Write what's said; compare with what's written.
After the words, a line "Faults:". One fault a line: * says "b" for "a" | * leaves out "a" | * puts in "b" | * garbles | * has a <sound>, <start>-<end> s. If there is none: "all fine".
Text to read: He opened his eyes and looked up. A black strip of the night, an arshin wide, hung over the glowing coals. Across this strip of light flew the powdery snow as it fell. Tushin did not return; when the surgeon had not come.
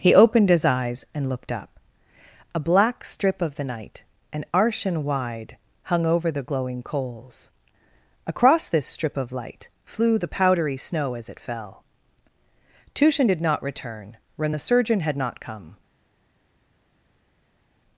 He opened his eyes and looked up. A black strip of the night, an arshin wide, hung over the glowing coals. Across this strip of light flew the powdery snow as it fell. Tushin did not return; when the surgeon had not come.
Faults:
all fine